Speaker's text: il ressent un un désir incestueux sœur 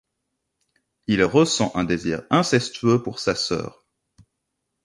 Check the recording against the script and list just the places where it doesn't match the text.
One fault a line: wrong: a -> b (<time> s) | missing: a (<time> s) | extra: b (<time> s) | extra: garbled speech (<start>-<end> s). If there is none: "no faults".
missing: un (1.8 s)
extra: pour sa (3.0 s)